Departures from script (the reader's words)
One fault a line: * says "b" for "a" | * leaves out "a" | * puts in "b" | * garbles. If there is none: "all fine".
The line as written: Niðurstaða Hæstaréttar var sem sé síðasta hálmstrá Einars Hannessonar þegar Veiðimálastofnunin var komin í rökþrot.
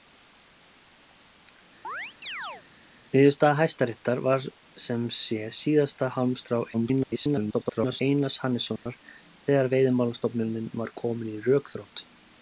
* garbles